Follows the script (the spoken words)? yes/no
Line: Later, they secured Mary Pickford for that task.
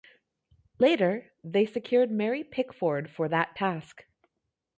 yes